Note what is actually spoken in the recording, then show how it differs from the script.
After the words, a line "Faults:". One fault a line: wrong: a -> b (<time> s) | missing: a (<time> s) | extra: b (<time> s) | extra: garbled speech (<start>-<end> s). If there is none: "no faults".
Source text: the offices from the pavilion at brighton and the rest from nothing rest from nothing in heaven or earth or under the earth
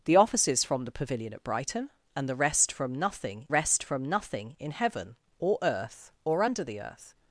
the offices from the pavilion at brighton and the rest from nothing rest from nothing in heaven or earth or under the earth
Faults:
no faults